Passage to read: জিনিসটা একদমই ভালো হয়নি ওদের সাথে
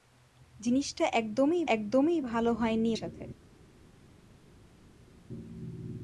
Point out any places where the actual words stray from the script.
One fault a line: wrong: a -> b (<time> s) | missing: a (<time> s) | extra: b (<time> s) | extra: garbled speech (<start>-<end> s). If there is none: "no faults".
extra: একদমই (1.7 s)
missing: ওদের (2.9 s)